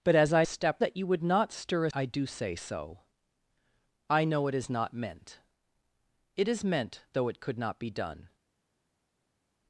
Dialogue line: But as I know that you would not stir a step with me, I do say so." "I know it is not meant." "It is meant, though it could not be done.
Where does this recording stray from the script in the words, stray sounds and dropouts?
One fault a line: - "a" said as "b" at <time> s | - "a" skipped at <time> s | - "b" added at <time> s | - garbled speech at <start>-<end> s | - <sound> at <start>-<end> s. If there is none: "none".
- "know" said as "step" at 0.4 s
- "step with me" skipped at 1.9 s